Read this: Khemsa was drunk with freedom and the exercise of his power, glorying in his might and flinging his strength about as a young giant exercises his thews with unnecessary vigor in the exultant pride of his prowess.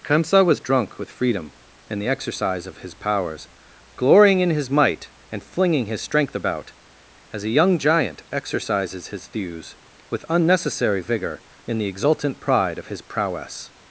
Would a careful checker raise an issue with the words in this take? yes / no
yes